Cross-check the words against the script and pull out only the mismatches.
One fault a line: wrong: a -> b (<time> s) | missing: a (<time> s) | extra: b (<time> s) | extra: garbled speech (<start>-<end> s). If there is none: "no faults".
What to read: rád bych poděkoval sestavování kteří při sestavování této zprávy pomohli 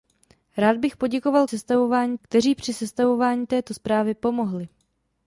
no faults